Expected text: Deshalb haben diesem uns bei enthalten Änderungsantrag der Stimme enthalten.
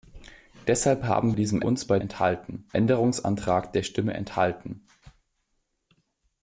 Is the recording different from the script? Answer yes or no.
no